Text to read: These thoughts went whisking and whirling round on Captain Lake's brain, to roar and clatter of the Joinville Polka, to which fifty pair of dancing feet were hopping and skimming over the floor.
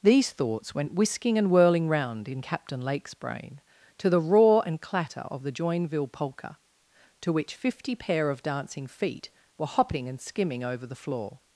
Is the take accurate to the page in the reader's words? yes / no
no